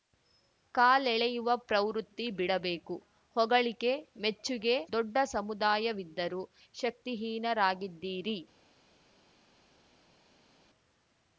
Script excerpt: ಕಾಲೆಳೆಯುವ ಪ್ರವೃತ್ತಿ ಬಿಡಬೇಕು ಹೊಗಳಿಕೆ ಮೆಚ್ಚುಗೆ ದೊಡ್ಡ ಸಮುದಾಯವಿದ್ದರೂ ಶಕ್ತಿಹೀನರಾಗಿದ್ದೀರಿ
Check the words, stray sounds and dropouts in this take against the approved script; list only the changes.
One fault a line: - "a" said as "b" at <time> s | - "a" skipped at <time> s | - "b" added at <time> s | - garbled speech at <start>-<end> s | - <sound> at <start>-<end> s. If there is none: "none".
none